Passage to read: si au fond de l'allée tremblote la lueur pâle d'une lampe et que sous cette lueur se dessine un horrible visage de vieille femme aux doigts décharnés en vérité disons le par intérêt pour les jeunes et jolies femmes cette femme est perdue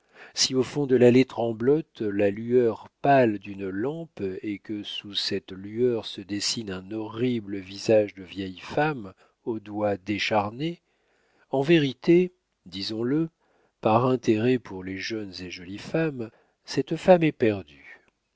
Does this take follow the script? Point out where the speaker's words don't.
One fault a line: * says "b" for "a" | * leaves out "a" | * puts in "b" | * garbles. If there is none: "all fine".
all fine